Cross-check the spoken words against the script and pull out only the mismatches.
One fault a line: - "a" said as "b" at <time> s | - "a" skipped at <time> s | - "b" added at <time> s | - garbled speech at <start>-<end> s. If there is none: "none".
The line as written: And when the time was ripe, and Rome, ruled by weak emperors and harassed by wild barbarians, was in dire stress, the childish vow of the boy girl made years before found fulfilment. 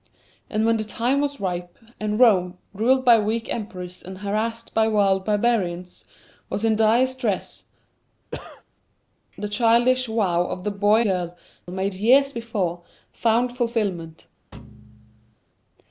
none